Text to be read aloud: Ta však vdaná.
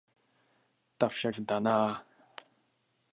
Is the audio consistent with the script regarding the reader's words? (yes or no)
yes